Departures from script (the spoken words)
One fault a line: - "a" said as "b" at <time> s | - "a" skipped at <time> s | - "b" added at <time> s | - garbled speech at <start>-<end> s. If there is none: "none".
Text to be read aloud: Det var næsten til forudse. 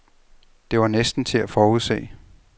- "at" added at 1.4 s